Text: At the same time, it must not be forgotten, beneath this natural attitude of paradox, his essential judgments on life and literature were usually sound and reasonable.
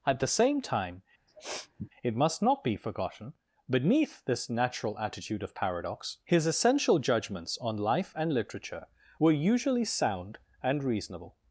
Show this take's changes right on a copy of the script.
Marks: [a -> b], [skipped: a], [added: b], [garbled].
At the same time, it must not be forgotten, beneath this natural attitude of paradox, his essential judgments on life and literature were usually sound and reasonable.